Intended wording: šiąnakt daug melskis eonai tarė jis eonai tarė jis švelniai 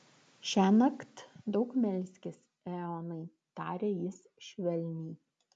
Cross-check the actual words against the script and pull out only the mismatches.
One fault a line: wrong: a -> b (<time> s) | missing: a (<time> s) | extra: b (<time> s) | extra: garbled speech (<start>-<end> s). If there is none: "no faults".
missing: eonai tarė jis (4.2 s)